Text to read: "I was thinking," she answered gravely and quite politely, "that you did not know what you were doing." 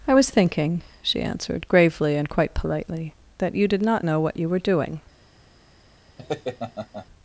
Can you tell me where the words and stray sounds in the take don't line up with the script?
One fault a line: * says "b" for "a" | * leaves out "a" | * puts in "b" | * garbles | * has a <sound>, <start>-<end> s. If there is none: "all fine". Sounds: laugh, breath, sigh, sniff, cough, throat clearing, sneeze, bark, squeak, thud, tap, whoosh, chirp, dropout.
* has a laugh, 6.2-7.1 s